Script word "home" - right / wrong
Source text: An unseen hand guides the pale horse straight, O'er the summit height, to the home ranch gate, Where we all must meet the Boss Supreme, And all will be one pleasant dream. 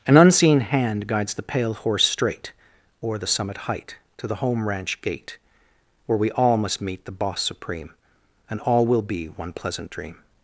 right